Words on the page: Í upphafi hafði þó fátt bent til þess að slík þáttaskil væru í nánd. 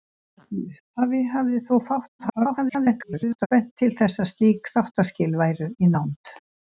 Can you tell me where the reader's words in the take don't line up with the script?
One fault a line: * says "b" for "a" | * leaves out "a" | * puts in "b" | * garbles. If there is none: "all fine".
* garbles